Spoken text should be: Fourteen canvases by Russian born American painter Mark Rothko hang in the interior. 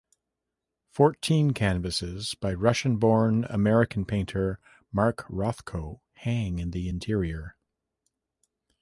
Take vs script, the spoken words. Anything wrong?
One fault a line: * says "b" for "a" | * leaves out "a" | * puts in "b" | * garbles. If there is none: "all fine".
all fine